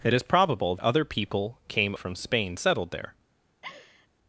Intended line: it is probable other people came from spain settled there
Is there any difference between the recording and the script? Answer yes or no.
no